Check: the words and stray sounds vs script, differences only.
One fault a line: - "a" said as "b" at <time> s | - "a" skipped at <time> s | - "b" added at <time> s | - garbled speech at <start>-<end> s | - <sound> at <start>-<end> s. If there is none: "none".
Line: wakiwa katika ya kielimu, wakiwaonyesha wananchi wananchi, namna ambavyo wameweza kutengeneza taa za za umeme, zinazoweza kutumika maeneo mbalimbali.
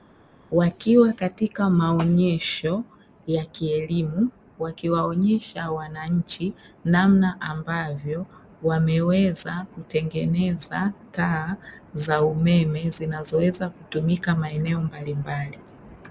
- "maonyesho" added at 1.7 s
- "wananchi" skipped at 6.5 s
- "za" skipped at 12.2 s